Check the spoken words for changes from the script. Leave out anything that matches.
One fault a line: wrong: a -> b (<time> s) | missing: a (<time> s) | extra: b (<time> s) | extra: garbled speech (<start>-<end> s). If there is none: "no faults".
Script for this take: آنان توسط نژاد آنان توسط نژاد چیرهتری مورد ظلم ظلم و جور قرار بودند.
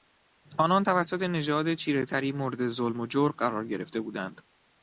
missing: آنان توسط نژاد (1.7 s)
missing: ظلم (3.0 s)
extra: گرفته (3.7 s)